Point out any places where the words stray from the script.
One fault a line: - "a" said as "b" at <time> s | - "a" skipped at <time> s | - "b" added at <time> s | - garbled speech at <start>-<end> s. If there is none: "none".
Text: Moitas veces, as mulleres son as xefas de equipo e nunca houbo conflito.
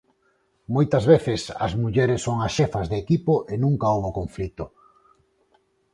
none